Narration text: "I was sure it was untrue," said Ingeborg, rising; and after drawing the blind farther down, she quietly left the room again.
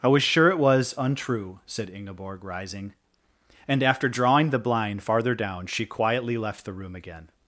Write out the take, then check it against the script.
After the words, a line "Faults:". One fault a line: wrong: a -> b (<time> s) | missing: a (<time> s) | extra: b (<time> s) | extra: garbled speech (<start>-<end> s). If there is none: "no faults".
"I was sure it was untrue," said Ingeborg, rising; and after drawing the blind farther down, she quietly left the room again.
Faults:
no faults